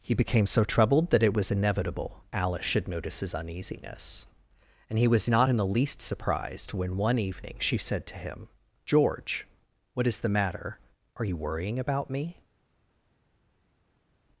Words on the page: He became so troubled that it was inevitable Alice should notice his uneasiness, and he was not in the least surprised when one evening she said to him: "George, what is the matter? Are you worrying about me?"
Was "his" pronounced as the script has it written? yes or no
yes